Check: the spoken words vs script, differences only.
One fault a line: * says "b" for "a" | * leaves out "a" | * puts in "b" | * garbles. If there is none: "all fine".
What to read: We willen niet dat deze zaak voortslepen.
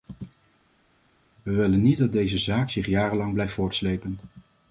* puts in "zich jarenlang blijft"